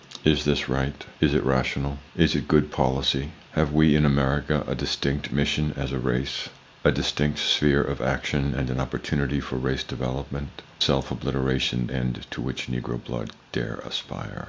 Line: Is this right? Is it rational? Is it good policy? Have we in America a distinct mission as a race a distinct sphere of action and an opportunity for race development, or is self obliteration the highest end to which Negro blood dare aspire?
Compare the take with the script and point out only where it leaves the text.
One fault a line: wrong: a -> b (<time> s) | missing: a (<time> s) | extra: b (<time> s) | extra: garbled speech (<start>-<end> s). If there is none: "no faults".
missing: or is (10.6 s)
missing: the highest (11.9 s)